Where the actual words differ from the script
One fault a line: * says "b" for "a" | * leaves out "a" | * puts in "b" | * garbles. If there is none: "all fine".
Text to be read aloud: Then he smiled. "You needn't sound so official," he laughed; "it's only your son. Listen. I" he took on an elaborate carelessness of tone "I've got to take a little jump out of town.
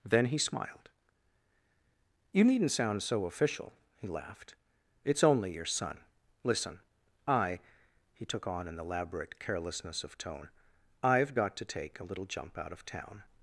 all fine